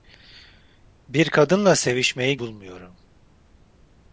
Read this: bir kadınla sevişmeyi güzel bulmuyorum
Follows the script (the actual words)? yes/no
no